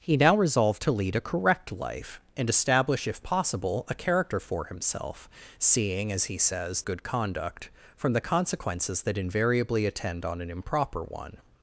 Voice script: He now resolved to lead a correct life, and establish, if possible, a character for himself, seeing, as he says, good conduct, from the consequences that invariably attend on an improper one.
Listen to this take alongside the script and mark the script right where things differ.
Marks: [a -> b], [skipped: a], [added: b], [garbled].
He now resolved to lead a correct life, and establish, if possible, a character for himself, seeing, as he says, good conduct, from the consequences that invariably attend on an improper one.